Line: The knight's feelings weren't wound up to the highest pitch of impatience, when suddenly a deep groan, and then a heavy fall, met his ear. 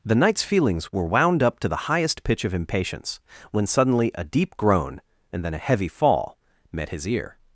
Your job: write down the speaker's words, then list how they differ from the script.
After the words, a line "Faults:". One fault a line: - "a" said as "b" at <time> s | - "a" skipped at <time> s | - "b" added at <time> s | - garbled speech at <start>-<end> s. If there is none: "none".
The knight's feelings were wound up to the highest pitch of impatience, when suddenly a deep groan, and then a heavy fall, met his ear.
Faults:
- "weren't" said as "were" at 0.9 s